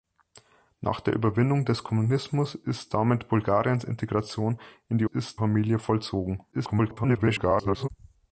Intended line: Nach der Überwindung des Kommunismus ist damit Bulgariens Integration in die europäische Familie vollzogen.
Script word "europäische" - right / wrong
wrong